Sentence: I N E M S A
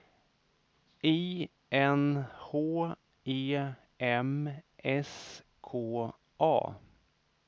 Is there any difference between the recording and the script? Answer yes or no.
yes